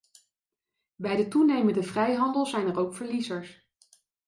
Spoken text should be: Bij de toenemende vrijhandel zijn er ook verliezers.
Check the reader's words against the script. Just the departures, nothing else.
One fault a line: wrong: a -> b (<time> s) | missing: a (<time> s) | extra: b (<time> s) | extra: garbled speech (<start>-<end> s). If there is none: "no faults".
no faults